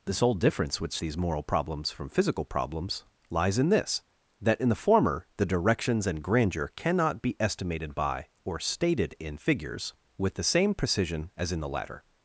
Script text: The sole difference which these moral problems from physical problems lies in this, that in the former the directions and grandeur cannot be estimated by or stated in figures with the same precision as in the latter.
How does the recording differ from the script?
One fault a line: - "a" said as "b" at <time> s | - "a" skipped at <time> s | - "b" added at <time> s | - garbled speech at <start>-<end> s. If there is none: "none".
none